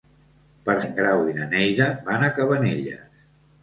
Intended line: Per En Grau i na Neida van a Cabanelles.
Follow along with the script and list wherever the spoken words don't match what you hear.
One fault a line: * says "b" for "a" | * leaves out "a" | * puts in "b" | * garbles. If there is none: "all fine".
all fine